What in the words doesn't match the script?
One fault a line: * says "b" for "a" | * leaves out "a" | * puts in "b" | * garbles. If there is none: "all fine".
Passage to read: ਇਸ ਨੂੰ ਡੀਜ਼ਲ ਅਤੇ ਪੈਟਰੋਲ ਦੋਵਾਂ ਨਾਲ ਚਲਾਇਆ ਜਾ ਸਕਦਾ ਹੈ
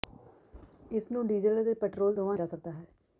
* leaves out "ਨਾਲ ਚਲਾਇਆ"